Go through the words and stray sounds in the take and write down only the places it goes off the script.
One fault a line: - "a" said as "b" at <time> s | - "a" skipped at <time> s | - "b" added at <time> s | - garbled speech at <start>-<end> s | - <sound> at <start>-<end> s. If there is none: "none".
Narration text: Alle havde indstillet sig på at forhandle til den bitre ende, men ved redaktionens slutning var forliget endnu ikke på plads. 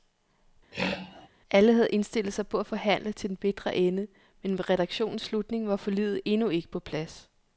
- throat clearing at 0.7-1.3 s